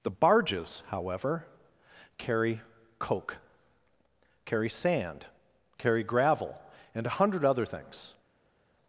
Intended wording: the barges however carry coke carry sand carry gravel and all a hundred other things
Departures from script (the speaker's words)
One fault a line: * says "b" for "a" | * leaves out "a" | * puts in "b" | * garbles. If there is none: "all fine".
* leaves out "all"